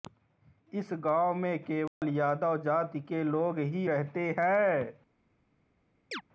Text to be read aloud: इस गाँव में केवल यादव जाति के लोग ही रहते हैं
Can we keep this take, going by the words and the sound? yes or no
no